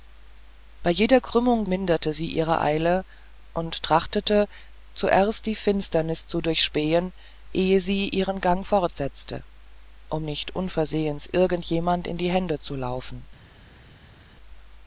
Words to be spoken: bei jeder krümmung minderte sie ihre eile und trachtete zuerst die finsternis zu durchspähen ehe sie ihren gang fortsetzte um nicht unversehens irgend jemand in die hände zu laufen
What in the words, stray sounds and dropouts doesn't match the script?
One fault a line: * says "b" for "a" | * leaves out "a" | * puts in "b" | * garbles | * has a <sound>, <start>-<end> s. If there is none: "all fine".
all fine